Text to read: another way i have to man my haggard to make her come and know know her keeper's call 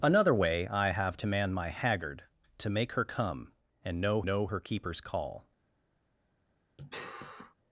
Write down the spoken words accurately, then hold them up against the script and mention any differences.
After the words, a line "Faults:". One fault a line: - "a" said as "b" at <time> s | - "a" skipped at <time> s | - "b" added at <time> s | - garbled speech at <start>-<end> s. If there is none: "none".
another way i have to man my haggard to make her come and know know her keeper's call
Faults:
none